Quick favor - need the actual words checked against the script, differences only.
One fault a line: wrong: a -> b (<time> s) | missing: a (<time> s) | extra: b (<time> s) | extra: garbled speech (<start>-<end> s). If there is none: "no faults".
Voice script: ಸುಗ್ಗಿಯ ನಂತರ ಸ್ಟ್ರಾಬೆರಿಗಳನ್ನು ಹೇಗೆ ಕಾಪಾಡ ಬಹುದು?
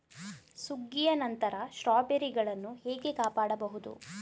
no faults